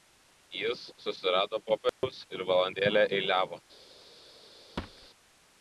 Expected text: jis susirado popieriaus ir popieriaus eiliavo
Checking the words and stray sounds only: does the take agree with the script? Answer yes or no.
no